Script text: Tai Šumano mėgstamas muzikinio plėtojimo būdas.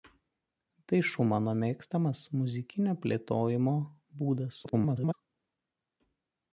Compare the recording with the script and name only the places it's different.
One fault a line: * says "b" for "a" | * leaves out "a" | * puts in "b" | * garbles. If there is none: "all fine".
* garbles